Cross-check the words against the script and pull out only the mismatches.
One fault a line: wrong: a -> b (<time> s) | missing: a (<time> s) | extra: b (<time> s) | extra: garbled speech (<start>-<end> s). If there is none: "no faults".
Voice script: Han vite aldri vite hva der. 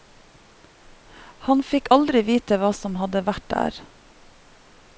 wrong: vite -> fikk (1.7 s)
extra: som hadde vært (2.8 s)